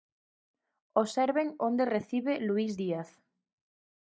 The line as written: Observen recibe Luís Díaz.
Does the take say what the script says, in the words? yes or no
no